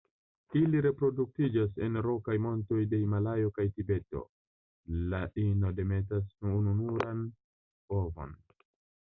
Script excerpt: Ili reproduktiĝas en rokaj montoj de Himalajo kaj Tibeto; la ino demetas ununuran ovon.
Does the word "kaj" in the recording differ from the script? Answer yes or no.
no